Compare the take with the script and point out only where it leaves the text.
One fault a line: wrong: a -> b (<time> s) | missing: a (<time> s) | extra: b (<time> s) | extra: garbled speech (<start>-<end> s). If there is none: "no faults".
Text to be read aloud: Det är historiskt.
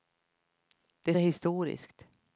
no faults